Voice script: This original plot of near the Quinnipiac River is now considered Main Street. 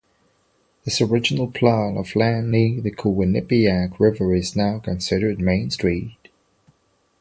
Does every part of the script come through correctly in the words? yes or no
no